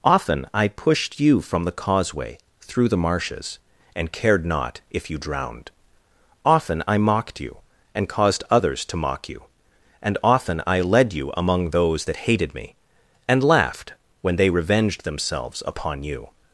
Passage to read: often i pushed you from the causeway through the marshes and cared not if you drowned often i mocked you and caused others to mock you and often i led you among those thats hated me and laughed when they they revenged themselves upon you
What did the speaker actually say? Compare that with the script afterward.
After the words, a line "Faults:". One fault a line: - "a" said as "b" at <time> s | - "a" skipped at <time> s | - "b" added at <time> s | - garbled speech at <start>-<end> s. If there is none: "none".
often i pushed you from the causeway through the marshes and cared not if you drowned often i mocked you and caused others to mock you and often i led you among those that hated me and laughed when they revenged themselves upon you
Faults:
- "thats" said as "that" at 12.0 s
- "they" skipped at 14.5 s